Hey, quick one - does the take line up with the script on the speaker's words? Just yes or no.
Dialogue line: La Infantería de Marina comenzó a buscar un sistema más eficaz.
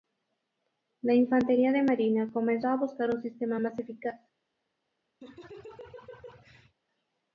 yes